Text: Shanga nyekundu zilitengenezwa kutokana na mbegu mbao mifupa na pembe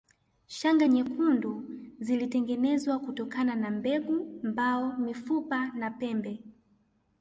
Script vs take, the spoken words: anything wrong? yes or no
no